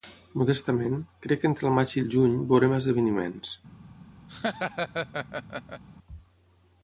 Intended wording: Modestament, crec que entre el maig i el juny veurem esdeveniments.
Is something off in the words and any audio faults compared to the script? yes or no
yes